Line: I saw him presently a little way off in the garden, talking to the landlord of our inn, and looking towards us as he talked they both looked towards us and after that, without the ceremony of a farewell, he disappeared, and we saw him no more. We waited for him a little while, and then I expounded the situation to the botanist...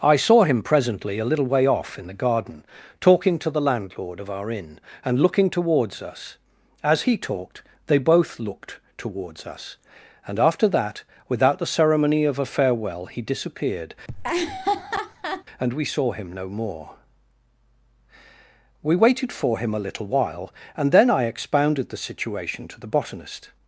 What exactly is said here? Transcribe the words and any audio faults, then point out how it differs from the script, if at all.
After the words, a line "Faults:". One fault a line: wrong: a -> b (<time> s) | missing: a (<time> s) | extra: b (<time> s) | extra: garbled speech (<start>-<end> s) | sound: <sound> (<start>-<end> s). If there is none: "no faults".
I saw him presently a little way off in the garden, talking to the landlord of our inn, and looking towards us as he talked they both looked towards us and after that, without the ceremony of a farewell, he disappeared, and we saw him no more. We waited for him a little while, and then I expounded the situation to the botanist...
Faults:
sound: laugh (14.1-15.4 s)